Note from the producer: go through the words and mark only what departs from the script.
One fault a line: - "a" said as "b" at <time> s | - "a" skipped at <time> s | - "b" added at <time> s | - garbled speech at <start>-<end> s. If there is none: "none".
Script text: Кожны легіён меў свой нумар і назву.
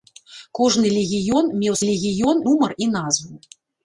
- "свой" said as "легіён" at 1.9 s